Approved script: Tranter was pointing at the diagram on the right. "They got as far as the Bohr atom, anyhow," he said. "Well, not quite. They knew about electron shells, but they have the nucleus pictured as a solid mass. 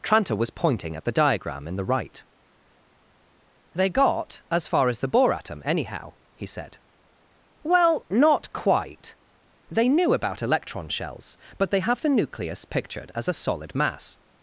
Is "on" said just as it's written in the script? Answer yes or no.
no